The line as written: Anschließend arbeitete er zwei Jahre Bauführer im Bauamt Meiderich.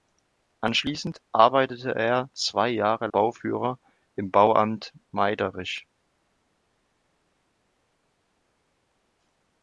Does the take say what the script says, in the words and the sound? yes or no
yes